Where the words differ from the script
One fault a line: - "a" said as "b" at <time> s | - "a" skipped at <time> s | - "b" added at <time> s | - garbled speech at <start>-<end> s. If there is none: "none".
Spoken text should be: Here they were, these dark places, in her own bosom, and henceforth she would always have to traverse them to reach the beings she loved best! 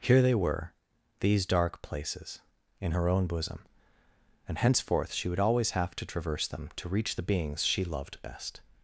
none